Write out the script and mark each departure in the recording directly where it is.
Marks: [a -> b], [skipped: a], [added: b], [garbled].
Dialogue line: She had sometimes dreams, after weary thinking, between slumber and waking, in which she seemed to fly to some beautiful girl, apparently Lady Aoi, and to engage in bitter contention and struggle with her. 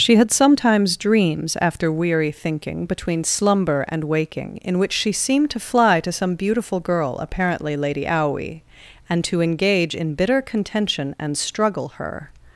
She had sometimes dreams, after weary thinking, between slumber and waking, in which she seemed to fly to some beautiful girl, apparently Lady Aoi, and to engage in bitter contention and struggle [skipped: with] her.